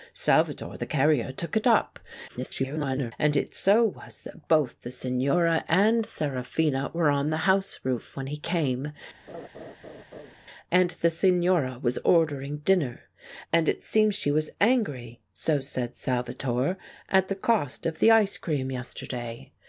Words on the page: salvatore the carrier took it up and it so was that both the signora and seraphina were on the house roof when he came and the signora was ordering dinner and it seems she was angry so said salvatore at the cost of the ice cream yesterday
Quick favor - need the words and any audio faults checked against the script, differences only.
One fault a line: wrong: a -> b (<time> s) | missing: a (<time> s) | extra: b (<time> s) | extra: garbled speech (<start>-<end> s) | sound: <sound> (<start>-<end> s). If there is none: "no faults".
extra: garbled speech (2.3-3.1 s)
sound: laugh (9.3-10.4 s)